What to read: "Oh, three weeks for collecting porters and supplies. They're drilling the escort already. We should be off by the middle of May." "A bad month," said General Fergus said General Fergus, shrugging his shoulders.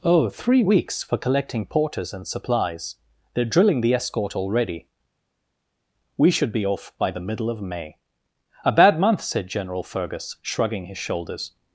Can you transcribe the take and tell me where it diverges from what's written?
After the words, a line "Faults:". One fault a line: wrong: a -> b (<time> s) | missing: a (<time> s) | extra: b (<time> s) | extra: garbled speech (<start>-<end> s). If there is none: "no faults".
"Oh, three weeks for collecting porters and supplies. They're drilling the escort already. We should be off by the middle of May." "A bad month," said General Fergus, shrugging his shoulders.
Faults:
missing: said General Fergus (10.4 s)